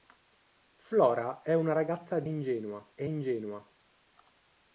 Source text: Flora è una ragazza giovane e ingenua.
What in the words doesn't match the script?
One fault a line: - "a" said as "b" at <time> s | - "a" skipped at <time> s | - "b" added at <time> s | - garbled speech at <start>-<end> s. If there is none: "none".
- "giovane" said as "ingenua" at 2.2 s